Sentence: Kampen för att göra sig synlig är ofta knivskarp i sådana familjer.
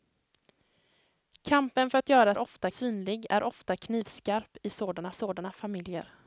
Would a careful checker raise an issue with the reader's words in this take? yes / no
yes